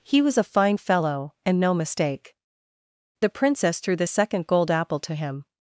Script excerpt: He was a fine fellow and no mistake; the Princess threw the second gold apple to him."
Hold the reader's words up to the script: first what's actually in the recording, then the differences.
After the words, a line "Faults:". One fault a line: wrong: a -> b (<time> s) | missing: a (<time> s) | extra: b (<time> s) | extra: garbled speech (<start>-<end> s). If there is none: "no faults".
He was a fine fellow and no mistake; the Princess threw the second gold apple to him."
Faults:
no faults